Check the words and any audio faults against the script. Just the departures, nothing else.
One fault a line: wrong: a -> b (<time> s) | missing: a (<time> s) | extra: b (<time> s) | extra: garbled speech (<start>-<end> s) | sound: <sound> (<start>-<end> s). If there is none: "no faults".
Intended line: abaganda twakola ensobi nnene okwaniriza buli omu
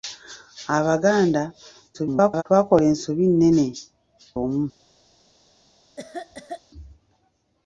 extra: garbled speech (1.9-2.4 s)
missing: okwaniriza buli (3.7 s)
sound: cough (6.0-6.6 s)